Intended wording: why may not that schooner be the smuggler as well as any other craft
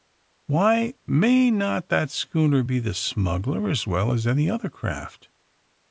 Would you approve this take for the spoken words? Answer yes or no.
yes